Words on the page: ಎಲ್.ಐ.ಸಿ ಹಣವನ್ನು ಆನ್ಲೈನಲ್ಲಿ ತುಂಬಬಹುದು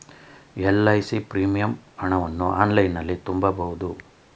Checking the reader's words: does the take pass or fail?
fail